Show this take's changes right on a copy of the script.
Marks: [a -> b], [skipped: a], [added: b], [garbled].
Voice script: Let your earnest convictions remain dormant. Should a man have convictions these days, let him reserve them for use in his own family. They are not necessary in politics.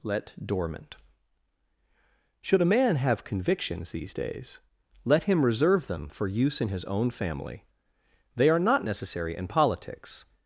Let [skipped: your earnest convictions remain] dormant. Should a man have convictions these days, let him reserve them for use in his own family. They are not necessary in politics.